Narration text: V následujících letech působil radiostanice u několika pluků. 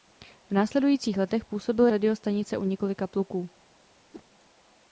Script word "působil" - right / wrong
right